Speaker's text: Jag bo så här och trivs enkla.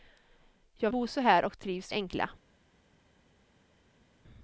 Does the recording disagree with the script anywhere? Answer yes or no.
no